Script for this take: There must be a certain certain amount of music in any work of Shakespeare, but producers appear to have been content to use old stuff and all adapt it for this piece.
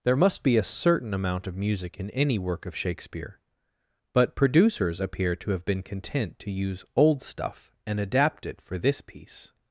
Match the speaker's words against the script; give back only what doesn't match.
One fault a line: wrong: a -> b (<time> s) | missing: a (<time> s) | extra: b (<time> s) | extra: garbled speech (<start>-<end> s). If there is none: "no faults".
missing: certain (1.1 s)
missing: all (8.0 s)